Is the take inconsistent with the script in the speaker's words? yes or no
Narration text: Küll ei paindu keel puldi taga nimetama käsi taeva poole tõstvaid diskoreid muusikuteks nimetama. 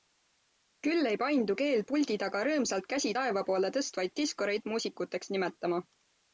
yes